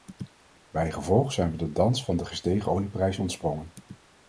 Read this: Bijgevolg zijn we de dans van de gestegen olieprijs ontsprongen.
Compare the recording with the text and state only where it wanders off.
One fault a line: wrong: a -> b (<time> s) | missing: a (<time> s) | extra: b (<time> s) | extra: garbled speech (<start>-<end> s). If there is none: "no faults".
no faults